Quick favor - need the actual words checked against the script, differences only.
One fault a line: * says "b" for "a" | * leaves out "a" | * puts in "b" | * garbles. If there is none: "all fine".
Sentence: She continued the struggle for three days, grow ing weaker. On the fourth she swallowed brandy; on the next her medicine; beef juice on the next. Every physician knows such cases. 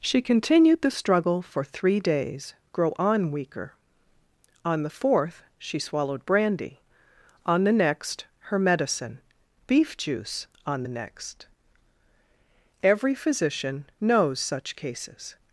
* says "on" for "ing"